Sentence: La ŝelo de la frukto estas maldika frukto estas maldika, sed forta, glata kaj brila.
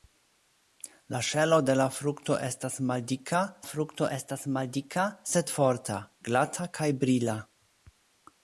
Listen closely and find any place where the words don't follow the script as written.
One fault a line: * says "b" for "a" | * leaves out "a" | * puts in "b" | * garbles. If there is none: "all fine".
all fine